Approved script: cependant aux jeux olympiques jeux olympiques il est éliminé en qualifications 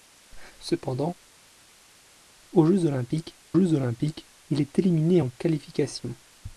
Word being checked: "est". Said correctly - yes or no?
yes